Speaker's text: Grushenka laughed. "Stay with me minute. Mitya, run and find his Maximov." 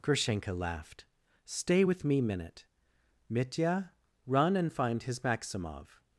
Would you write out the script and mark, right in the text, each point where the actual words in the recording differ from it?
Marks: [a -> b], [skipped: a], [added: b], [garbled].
Grushenka laughed. "Stay with me minute. Mitya, run and find his Maximov."